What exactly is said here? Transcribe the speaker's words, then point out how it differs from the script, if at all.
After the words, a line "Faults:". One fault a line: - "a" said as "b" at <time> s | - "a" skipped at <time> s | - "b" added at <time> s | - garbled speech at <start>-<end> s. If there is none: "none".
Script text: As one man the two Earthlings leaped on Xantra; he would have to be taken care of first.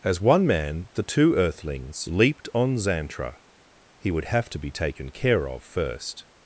As one man the two Earthlings leaped on Xantra; he would have to be taken care of first.
Faults:
none